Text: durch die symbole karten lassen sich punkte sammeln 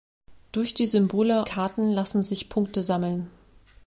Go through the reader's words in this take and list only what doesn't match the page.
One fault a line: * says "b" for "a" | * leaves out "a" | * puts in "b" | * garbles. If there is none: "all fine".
all fine